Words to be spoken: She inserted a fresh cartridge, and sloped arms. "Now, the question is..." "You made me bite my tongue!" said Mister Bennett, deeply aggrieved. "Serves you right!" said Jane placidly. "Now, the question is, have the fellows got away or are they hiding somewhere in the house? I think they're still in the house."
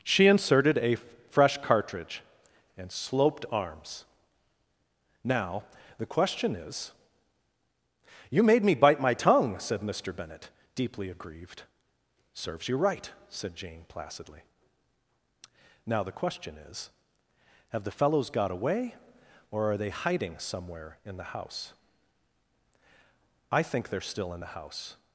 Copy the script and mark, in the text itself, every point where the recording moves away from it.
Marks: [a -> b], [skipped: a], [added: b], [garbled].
She inserted a fresh cartridge, and sloped arms. "Now, the question is..." "You made me bite my tongue!" said Mister Bennett, deeply aggrieved. "Serves you right!" said Jane placidly. "Now, the question is, have the fellows got away or are they hiding somewhere in the house? I think they're still in the house."